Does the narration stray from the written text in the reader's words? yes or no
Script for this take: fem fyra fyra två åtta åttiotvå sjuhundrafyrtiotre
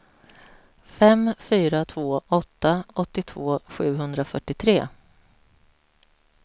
yes